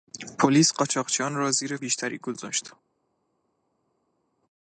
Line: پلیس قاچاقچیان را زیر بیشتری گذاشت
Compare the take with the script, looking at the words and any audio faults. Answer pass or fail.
pass